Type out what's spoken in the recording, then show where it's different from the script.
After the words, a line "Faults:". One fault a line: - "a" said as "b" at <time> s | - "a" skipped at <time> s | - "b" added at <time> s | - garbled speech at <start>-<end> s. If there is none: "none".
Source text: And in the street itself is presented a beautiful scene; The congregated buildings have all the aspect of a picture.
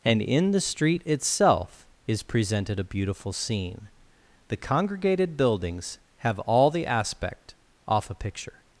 And in the street itself is presented a beautiful scene; The congregated buildings have all the aspect off a picture.
Faults:
- "of" said as "off" at 7.9 s